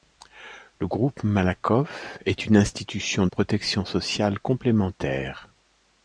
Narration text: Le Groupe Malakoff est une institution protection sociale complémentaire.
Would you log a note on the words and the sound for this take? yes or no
no